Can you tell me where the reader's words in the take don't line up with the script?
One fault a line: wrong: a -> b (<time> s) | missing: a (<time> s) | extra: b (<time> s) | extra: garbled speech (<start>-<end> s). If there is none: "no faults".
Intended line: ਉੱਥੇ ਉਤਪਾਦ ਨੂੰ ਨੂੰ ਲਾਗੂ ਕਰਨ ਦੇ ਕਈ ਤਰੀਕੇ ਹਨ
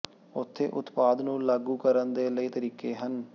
missing: ਨੂੰ (1.4 s)